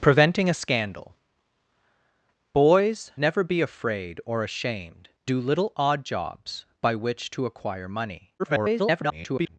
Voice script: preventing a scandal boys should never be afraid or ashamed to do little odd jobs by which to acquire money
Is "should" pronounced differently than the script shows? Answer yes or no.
yes